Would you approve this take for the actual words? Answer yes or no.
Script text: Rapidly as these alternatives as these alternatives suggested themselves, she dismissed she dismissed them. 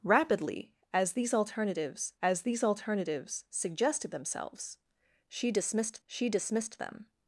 yes